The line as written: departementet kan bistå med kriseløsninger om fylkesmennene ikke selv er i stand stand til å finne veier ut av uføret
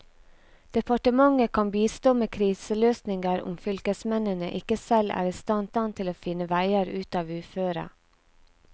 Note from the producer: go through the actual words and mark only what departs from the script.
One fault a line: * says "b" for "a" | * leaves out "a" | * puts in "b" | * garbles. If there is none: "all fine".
all fine